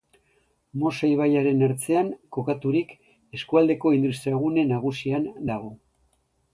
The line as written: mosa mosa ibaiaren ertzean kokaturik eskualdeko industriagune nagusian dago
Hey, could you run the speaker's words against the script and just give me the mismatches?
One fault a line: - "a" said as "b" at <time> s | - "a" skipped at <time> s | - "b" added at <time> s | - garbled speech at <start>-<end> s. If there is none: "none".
- "mosa" skipped at 1.1 s